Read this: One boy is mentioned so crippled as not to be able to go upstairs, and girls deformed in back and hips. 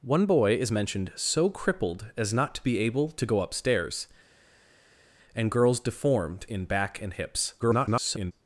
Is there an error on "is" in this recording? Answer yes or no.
no